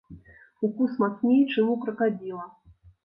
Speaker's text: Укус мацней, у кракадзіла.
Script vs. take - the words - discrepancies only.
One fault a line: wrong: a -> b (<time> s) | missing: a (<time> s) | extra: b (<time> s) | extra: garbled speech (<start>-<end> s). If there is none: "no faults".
extra: чым (1.5 s)